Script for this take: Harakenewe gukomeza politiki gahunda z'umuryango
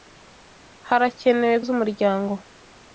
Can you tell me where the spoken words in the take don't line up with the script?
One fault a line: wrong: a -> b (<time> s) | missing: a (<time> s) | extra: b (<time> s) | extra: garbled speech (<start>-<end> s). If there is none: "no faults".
missing: gukomeza politiki gahunda (1.6 s)